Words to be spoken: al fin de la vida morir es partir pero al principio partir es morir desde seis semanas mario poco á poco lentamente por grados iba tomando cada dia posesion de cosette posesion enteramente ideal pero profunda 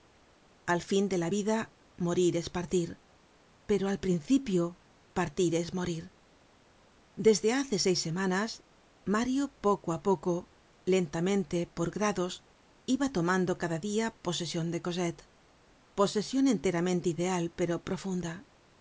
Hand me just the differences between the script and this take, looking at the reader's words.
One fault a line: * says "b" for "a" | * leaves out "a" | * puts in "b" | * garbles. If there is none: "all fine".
* puts in "hace"